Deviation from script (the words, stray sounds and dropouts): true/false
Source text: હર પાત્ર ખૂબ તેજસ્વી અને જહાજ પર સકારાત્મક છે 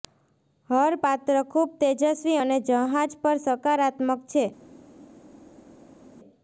false